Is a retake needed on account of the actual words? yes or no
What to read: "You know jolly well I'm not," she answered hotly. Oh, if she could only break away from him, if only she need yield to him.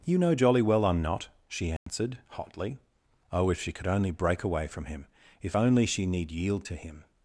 no